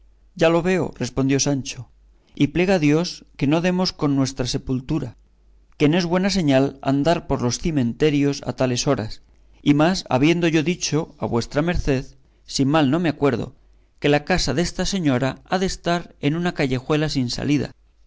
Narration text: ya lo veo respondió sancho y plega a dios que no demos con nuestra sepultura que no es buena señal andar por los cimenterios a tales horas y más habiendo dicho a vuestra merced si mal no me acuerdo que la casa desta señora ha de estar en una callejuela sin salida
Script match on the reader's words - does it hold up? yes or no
no